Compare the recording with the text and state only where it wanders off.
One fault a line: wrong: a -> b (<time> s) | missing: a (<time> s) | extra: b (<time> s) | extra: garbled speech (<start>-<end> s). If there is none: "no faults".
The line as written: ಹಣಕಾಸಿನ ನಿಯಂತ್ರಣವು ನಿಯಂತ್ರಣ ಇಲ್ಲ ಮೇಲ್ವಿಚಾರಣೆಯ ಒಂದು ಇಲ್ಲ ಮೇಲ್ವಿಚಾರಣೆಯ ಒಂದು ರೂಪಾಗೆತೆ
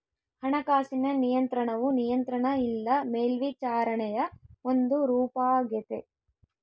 missing: ಇಲ್ಲ ಮೇಲ್ವಿಚಾರಣೆಯ ಒಂದು (5.1 s)